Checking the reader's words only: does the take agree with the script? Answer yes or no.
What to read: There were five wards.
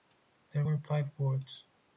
yes